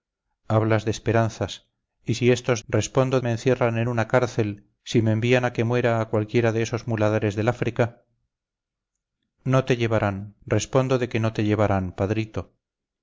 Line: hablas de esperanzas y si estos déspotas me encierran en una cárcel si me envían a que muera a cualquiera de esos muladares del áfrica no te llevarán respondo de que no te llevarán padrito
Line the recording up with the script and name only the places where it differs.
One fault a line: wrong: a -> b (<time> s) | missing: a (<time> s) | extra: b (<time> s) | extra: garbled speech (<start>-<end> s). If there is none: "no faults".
wrong: déspotas -> respondo (2.7 s)